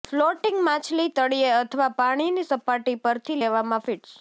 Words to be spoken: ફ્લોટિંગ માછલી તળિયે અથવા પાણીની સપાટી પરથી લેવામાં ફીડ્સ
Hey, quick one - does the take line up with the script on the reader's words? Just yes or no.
yes